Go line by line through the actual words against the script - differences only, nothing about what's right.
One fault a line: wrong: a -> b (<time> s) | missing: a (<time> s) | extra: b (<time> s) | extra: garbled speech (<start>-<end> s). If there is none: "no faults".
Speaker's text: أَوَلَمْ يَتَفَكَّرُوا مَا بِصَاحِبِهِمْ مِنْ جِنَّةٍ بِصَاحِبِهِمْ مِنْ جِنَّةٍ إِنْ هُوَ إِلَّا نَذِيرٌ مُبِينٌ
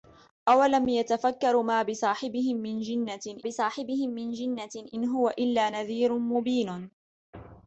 no faults